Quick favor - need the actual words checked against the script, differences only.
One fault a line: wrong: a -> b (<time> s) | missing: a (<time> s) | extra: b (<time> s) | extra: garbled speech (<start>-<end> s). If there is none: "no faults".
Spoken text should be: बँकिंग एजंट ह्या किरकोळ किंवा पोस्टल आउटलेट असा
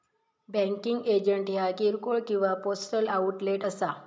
no faults